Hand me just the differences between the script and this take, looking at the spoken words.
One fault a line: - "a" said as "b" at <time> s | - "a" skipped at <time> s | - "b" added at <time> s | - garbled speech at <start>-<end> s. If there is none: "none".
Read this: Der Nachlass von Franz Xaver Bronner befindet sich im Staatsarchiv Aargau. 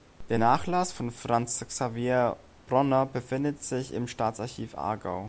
none